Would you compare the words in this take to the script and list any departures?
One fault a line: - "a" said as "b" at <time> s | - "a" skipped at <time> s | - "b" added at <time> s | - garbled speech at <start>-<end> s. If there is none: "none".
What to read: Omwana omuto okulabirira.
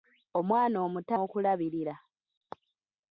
none